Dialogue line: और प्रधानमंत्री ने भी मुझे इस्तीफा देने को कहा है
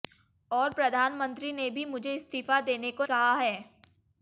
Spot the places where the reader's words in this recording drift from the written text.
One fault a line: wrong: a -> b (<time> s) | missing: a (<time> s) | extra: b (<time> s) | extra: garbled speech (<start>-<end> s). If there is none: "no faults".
no faults